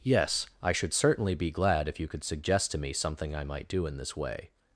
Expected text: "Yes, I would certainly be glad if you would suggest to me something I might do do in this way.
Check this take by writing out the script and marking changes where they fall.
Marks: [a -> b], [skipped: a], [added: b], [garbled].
"Yes, I [would -> should] certainly be glad if you [would -> could] suggest to me something I might do [skipped: do] in this way.